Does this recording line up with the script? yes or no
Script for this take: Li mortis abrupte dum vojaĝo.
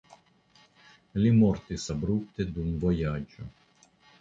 yes